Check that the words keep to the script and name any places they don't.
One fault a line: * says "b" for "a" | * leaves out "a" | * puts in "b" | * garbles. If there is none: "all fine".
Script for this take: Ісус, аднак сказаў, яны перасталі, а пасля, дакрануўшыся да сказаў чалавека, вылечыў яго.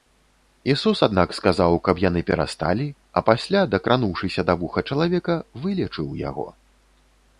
* puts in "каб"
* says "вуха" for "сказаў"